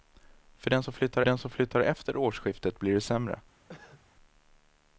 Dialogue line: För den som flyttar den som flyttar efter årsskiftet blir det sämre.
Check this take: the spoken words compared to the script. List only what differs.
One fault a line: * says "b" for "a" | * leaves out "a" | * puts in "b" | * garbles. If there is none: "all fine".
all fine